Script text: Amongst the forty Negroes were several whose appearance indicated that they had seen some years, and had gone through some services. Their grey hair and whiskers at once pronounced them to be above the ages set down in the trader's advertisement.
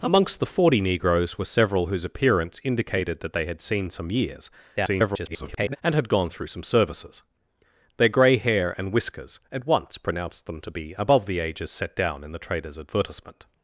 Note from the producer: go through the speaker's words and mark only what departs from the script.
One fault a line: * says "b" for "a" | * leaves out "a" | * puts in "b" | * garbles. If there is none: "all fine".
* garbles